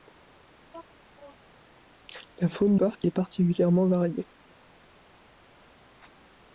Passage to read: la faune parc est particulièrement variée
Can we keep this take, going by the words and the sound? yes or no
yes